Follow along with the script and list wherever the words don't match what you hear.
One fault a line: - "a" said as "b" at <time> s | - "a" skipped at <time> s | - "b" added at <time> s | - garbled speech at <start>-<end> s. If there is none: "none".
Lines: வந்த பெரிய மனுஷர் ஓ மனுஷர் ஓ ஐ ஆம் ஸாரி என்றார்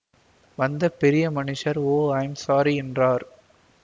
- "மனுஷர் ஓ" skipped at 2.0 s